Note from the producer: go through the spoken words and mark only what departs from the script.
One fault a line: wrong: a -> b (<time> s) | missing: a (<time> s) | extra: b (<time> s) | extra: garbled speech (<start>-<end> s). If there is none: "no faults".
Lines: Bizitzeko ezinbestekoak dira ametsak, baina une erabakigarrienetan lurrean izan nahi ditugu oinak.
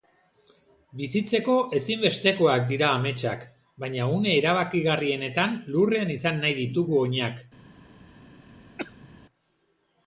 no faults